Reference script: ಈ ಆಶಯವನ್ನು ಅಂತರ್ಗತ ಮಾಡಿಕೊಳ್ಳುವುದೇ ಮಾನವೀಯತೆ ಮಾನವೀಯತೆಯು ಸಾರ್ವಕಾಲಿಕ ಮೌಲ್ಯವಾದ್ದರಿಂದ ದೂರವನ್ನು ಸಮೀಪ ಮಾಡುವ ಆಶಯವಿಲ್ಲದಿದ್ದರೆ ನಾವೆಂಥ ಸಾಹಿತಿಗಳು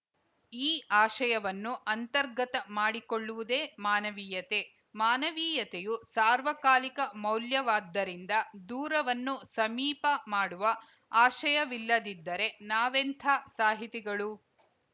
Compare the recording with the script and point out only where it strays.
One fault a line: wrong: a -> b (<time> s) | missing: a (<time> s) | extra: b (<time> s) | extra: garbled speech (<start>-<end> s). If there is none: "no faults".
no faults